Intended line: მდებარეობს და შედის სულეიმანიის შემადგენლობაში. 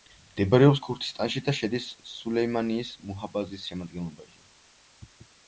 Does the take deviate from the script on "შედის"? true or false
false